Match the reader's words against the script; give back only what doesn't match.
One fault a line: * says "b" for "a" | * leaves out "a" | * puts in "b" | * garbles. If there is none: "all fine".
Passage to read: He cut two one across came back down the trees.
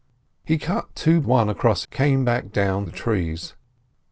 all fine